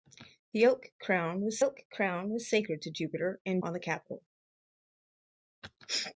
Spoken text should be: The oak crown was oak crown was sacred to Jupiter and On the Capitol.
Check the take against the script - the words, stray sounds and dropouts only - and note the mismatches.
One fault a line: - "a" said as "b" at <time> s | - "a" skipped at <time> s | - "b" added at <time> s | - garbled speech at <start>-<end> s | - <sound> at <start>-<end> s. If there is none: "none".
none